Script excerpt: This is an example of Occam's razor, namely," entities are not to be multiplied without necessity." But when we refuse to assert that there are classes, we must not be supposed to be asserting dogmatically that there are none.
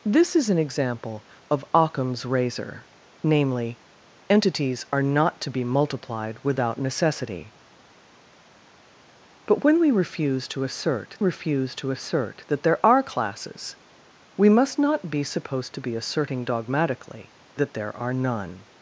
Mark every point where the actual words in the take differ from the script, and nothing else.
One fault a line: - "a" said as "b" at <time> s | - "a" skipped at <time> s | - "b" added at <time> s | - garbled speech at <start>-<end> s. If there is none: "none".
- "refuse to assert" added at 11.2 s